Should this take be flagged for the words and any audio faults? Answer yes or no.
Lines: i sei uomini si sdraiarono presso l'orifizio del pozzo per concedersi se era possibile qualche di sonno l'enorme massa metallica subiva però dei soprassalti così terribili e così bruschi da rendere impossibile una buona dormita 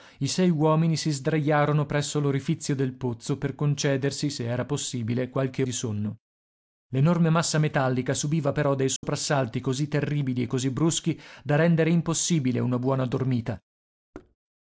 yes